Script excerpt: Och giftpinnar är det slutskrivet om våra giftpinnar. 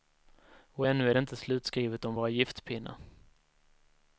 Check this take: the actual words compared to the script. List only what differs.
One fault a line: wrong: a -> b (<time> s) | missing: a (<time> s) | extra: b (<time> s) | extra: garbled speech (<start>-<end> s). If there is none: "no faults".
wrong: giftpinnar -> ännu (0.9 s)
extra: inte (1.2 s)